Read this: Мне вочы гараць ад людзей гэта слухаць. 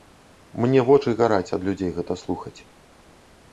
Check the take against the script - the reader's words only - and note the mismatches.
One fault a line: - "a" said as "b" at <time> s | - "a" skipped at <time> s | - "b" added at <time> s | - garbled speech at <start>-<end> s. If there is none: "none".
none